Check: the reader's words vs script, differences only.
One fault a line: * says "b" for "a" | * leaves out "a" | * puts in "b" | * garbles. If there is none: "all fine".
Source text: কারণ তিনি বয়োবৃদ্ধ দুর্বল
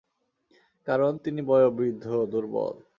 all fine